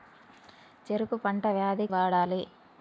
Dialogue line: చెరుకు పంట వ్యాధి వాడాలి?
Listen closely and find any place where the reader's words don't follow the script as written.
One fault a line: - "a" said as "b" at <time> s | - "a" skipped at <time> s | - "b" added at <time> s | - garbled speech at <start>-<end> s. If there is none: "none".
none